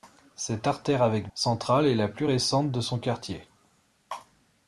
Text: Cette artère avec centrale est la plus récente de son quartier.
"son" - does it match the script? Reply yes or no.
yes